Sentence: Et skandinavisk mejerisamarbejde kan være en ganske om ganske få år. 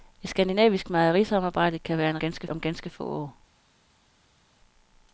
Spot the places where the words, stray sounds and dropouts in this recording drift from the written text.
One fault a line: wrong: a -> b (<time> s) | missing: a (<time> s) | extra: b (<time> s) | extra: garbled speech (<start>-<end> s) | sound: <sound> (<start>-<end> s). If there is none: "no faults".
no faults